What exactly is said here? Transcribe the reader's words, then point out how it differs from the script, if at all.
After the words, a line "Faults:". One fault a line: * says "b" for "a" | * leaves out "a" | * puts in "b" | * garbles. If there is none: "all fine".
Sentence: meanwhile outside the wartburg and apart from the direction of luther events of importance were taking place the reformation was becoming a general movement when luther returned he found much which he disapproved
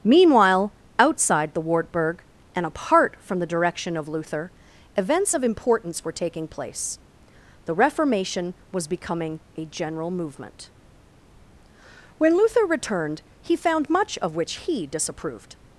meanwhile outside the wartburg and apart from the direction of luther events of importance were taking place the reformation was becoming a general movement when luther returned he found much of which he disapproved
Faults:
* puts in "of"